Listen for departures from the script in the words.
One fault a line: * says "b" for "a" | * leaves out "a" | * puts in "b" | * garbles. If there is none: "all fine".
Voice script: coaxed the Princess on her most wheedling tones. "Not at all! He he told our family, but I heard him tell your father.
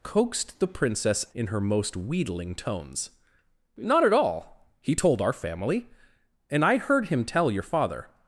* says "in" for "on"
* leaves out "he"
* says "and" for "but"